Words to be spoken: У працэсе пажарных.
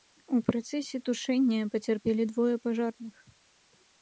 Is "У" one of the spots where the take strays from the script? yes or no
no